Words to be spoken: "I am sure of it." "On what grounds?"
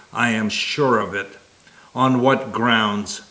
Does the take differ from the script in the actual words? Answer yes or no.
no